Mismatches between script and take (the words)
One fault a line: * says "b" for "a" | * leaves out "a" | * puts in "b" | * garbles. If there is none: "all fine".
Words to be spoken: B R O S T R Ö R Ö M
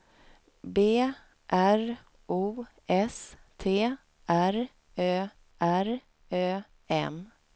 all fine